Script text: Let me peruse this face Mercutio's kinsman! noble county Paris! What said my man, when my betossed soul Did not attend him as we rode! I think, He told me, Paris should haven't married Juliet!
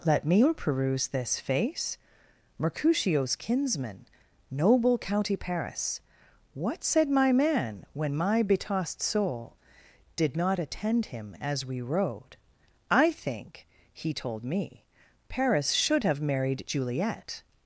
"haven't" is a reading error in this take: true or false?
true